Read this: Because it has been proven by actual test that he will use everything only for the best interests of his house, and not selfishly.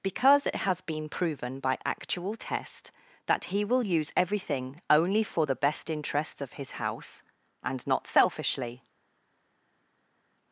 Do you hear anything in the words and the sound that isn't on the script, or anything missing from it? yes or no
no